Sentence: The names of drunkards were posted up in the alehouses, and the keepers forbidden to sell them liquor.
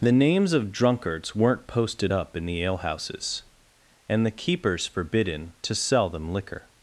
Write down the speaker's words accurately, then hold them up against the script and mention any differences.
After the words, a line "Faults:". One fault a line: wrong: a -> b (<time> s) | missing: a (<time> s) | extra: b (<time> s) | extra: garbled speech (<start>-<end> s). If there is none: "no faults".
The names of drunkards weren't posted up in the alehouses, and the keepers forbidden to sell them liquor.
Faults:
wrong: were -> weren't (1.4 s)